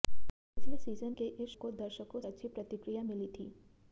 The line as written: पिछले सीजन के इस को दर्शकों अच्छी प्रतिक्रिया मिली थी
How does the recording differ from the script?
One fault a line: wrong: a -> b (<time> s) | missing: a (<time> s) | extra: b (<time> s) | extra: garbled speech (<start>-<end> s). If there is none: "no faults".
no faults